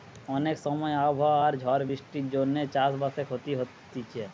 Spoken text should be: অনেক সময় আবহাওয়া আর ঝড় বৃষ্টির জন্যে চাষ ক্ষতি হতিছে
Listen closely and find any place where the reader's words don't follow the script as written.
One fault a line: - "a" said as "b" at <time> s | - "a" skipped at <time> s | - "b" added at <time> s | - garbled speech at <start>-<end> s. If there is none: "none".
- "বাসে" added at 3.0 s